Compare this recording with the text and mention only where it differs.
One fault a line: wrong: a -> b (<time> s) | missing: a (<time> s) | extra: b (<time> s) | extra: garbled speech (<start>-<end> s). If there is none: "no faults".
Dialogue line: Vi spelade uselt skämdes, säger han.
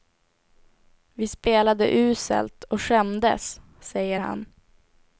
extra: och (2.6 s)